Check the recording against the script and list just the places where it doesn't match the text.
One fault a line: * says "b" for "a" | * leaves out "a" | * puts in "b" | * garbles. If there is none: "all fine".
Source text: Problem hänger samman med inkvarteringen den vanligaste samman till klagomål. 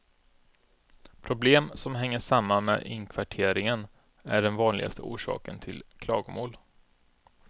* puts in "som"
* puts in "är"
* says "orsaken" for "samman"